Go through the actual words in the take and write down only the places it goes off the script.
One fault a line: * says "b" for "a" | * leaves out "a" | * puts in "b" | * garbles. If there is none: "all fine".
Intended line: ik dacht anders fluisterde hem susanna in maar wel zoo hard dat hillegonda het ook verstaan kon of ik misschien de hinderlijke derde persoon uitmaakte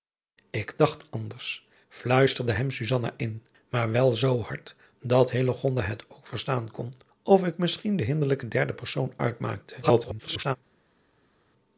* garbles